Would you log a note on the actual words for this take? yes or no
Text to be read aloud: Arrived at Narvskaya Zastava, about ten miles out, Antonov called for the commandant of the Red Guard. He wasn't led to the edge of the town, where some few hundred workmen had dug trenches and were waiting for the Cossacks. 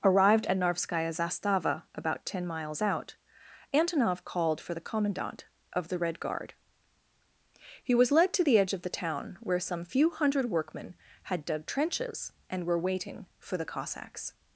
yes